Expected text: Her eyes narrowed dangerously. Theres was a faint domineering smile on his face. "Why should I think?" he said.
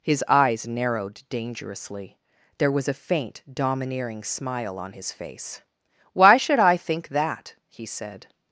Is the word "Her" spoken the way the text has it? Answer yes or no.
no